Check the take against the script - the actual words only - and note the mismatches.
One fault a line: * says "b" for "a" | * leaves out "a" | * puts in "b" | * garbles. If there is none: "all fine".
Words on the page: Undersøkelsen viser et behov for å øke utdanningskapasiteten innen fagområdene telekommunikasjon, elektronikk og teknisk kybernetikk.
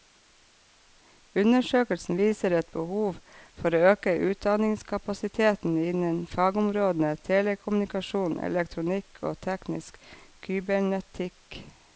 all fine